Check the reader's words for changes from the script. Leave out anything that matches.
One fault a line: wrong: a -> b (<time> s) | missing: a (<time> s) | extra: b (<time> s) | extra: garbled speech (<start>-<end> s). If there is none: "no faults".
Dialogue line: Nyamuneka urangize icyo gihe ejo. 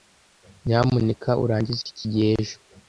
wrong: icyo -> iki (1.9 s)